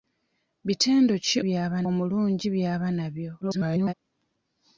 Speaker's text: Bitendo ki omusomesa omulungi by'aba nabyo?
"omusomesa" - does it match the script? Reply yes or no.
no